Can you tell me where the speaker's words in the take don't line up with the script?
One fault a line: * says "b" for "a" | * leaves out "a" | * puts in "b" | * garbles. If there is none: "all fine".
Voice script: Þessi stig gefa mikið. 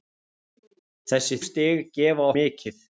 all fine